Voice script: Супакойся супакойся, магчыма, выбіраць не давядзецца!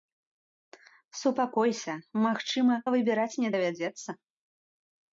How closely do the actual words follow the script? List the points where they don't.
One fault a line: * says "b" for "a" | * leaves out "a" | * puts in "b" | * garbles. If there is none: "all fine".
* leaves out "супакойся"